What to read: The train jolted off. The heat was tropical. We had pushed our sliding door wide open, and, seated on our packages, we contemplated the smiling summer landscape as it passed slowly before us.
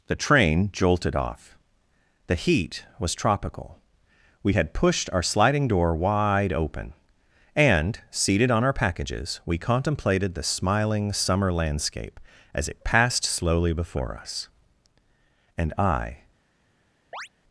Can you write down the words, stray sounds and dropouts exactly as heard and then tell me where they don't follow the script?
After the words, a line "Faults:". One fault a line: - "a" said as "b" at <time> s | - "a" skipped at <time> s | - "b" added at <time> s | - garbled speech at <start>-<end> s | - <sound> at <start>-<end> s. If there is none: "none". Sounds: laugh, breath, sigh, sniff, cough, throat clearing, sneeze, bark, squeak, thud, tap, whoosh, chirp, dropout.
The train jolted off. The heat was tropical. We had pushed our sliding door wide open, and, seated on our packages, we contemplated the smiling summer landscape as it passed slowly before us. And I
Faults:
- "And I" added at 15.6 s
- chirp at 17.1-17.3 s